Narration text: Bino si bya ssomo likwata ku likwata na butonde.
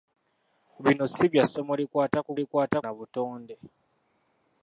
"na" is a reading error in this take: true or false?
false